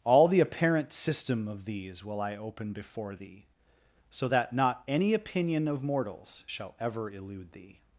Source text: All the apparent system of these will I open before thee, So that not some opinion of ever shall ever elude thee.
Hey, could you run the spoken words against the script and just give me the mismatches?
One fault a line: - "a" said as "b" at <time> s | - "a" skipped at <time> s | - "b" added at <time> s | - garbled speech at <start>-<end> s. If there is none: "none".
- "some" said as "any" at 4.9 s
- "ever" said as "mortals" at 5.8 s